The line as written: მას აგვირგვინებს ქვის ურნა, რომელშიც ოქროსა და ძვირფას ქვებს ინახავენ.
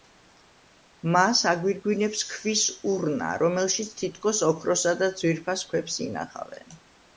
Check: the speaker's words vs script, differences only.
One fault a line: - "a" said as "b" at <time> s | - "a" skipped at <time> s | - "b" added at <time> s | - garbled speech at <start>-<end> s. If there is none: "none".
- "თითქოს" added at 4.0 s